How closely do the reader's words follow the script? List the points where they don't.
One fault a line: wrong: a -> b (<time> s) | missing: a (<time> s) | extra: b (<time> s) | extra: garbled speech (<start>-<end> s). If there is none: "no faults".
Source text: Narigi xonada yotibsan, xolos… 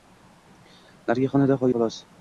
missing: yotibsan (1.6 s)